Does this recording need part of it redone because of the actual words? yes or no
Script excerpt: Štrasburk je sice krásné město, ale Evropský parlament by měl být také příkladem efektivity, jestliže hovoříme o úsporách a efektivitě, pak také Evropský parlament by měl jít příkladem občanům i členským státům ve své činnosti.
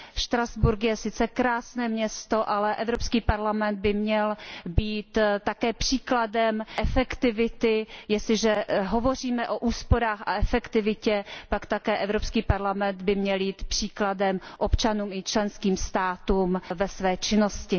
no